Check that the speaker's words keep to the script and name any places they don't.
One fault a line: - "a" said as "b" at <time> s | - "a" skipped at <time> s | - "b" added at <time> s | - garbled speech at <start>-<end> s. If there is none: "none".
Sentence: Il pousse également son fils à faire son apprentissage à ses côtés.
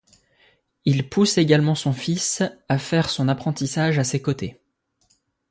none